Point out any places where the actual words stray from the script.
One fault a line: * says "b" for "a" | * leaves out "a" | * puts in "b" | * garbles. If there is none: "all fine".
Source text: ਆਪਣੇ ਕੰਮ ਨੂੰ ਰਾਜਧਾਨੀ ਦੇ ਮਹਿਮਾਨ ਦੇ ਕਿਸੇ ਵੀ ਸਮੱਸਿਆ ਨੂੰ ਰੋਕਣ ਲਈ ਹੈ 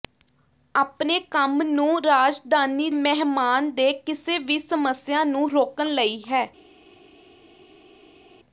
* leaves out "ਦੇ"